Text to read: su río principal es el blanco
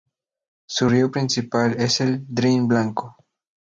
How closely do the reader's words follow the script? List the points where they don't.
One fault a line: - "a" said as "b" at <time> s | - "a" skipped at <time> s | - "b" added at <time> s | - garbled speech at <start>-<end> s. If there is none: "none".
- "drin" added at 2.3 s